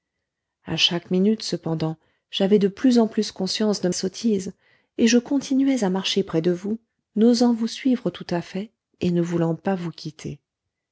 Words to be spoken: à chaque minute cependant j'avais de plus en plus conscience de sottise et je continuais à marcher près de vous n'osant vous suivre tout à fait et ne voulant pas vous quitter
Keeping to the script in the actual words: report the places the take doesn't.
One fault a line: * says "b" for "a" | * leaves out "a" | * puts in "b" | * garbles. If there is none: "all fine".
all fine